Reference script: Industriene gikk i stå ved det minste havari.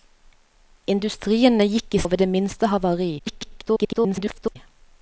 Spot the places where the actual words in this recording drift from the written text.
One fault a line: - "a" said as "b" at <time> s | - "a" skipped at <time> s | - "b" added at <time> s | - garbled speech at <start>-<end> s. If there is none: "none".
- "stå" skipped at 2.0 s
- garbled speech at 3.2-4.6 s